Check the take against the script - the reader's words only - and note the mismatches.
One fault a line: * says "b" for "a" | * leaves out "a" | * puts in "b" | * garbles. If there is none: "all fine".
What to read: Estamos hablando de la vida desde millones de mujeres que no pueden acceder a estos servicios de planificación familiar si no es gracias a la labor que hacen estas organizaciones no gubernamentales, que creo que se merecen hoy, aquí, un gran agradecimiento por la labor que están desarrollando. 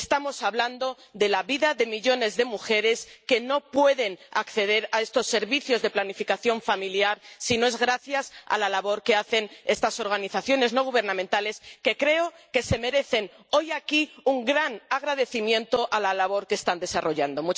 * says "de" for "desde"